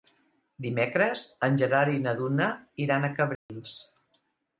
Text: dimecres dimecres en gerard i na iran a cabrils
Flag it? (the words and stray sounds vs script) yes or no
yes